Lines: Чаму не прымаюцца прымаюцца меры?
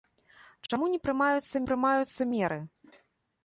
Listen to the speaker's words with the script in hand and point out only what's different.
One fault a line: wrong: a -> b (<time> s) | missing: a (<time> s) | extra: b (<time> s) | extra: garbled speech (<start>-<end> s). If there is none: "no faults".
no faults